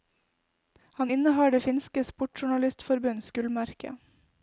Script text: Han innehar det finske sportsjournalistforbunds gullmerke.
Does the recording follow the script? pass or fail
pass